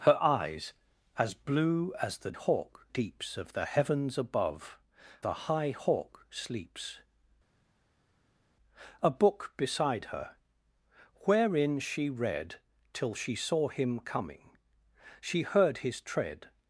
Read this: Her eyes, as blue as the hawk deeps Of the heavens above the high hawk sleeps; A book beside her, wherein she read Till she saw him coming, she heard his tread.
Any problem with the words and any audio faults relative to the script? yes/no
no